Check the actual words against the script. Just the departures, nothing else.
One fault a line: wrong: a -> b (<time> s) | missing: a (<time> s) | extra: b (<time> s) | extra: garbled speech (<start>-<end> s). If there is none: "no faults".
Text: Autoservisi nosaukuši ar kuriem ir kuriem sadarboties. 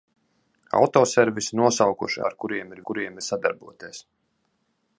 no faults